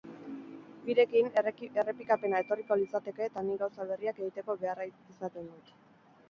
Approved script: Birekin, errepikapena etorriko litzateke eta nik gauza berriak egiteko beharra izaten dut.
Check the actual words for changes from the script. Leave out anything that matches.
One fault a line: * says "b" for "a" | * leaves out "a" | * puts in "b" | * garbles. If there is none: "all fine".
all fine